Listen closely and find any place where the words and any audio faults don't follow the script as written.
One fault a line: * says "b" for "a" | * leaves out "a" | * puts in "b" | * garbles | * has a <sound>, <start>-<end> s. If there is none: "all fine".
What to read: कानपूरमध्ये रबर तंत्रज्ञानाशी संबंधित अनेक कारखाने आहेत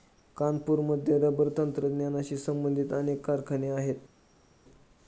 all fine